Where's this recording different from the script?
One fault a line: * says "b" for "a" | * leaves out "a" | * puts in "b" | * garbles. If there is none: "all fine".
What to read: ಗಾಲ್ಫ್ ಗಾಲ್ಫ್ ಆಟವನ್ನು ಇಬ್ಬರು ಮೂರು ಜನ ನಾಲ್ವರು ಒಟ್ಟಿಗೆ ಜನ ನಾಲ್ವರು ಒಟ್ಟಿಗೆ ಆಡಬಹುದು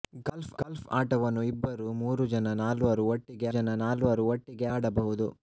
all fine